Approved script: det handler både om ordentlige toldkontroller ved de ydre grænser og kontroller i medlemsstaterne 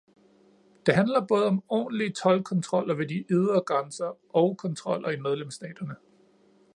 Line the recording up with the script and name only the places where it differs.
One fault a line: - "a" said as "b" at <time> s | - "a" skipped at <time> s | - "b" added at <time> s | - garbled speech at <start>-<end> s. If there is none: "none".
none